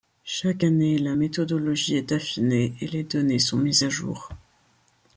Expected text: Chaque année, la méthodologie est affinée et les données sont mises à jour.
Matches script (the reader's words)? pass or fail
pass